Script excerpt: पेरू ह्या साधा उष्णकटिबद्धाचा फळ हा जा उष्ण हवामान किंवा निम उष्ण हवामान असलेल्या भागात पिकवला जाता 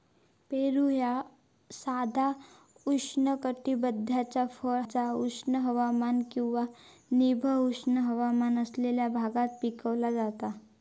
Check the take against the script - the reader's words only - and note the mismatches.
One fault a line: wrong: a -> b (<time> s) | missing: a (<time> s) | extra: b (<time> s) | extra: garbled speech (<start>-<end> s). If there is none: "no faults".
missing: हा (4.8 s)